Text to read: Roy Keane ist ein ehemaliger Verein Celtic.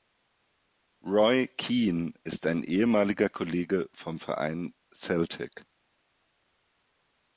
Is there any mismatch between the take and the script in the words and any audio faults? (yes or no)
yes